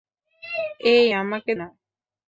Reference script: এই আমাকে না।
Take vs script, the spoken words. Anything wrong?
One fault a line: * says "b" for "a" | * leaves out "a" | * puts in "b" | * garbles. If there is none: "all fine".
all fine